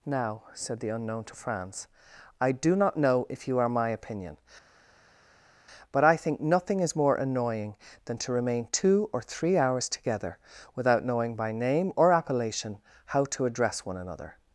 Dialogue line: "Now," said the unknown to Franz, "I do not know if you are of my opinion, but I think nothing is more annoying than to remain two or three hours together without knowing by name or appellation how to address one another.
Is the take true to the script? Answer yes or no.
no